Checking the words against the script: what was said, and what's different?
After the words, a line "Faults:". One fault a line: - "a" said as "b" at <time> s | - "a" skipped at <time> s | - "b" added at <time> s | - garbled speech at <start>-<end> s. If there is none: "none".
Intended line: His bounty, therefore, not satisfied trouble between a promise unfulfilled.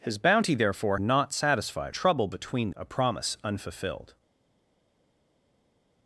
His bounty, therefore, not satisfied trouble between a promise unfulfilled.
Faults:
none